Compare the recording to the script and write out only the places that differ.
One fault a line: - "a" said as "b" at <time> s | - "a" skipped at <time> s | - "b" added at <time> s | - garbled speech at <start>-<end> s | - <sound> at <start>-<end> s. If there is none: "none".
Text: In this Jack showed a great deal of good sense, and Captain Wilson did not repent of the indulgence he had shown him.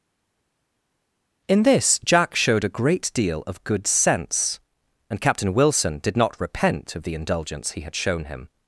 none